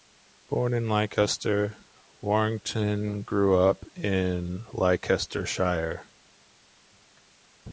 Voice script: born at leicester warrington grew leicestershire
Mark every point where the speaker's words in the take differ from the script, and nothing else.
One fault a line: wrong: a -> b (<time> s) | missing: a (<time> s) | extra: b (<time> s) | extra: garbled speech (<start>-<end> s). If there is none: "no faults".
wrong: at -> in (0.7 s)
extra: up in (3.5 s)